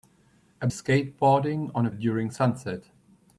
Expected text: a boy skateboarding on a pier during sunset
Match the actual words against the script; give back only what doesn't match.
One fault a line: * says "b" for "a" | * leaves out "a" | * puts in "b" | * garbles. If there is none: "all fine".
* leaves out "boy"
* leaves out "pier"